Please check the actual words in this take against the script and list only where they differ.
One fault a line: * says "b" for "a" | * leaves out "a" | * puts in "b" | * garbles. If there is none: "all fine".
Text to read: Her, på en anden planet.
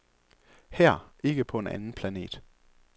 * puts in "ikke"